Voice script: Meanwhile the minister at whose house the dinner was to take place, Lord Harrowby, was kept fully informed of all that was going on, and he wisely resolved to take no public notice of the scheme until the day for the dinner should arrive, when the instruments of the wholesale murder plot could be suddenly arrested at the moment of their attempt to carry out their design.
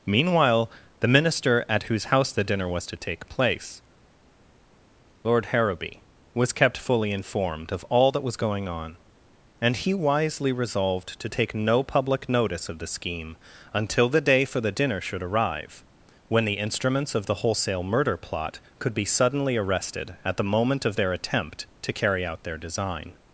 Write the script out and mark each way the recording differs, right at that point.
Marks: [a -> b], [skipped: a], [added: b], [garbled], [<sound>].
Meanwhile the minister at whose house the dinner was to take place, Lord Harrowby, was kept fully informed of all that was going on, and he wisely resolved to take no public notice of the scheme until the day for the dinner should arrive, when the instruments of the wholesale murder plot could be suddenly arrested at the moment of their attempt to carry out their design.